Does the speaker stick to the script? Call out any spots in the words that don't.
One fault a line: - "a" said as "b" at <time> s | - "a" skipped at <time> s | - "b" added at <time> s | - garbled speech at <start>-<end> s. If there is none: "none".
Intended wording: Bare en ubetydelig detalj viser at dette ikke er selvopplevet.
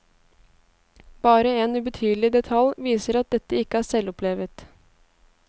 none